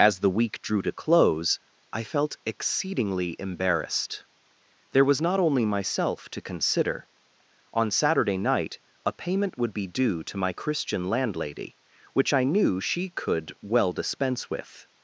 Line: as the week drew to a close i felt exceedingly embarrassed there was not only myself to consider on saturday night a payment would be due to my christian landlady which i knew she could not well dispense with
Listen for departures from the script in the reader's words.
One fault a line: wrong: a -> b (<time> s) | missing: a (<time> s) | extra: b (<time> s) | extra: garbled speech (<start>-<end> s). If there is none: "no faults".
missing: a (0.9 s)
missing: not (13.5 s)